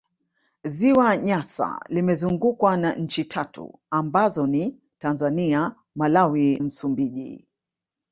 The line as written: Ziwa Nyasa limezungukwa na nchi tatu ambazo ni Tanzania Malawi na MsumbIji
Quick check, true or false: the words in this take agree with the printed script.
false